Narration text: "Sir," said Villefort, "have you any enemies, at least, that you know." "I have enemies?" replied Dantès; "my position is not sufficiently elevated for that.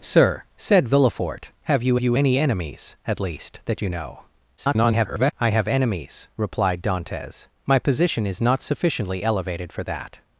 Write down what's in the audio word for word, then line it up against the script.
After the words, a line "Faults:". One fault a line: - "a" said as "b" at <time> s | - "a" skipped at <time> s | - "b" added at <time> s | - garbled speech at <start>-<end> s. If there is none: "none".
"Sir," said Villefort, "have you you any enemies, at least, that you know." [garbled] "I have enemies?" replied Dantès; "my position is not sufficiently elevated for that.
Faults:
- "you" added at 2.0 s
- garbled speech at 4.6-5.3 s